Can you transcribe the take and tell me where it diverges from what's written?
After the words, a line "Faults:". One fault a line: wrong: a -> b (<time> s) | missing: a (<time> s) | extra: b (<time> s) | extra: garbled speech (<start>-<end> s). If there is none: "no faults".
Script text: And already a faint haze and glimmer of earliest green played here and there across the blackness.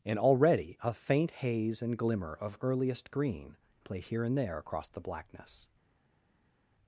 And already a faint haze and glimmer of earliest green play here and there across the blackness.
Faults:
wrong: played -> play (3.8 s)